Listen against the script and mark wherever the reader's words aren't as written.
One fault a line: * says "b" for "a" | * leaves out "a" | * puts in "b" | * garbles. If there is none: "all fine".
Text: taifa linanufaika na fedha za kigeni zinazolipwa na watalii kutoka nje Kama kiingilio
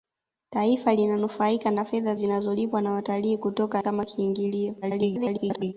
* leaves out "za kigeni"
* leaves out "nje"
* garbles